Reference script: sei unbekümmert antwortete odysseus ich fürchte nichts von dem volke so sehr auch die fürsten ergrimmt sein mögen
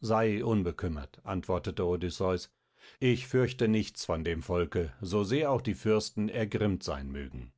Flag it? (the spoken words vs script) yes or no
no